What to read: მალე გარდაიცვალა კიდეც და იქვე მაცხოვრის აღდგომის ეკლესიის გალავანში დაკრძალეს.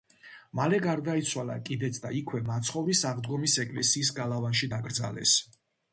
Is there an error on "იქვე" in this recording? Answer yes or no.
no